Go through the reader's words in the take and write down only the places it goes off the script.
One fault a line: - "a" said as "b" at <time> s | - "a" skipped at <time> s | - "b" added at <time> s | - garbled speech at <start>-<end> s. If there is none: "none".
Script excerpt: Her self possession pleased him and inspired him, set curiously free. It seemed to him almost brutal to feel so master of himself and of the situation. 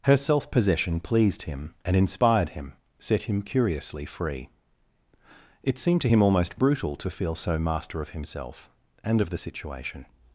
- "him" added at 3.2 s